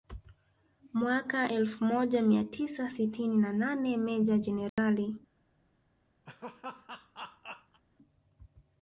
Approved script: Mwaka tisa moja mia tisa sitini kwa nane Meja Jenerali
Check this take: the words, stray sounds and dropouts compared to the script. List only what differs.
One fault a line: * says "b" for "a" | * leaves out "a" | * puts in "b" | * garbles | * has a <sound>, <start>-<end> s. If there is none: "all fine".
* says "elfu" for "tisa"
* says "na" for "kwa"
* has a dropout, 4.7-4.8 s
* has a laugh, 6.3-7.8 s